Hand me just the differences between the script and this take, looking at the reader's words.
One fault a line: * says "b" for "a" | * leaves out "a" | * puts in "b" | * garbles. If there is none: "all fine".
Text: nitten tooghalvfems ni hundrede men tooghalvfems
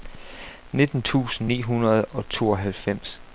* says "tusind" for "tooghalvfems"
* says "og" for "men"